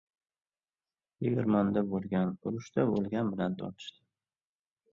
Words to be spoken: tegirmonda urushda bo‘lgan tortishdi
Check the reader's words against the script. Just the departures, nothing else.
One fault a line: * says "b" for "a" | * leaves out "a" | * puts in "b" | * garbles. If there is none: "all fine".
* puts in "bo‘lgan"
* puts in "bilan"